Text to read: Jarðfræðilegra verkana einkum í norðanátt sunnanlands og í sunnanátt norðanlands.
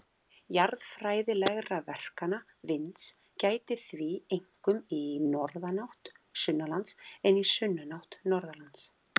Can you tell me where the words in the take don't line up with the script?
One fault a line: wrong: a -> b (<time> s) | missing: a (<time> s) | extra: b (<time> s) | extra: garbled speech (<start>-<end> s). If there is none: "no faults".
extra: vinds gætir því (2.7 s)
wrong: og -> en (7.3 s)